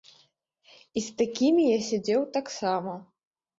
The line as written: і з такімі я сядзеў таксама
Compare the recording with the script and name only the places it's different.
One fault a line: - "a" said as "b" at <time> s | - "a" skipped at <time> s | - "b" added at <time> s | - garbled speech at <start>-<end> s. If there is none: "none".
none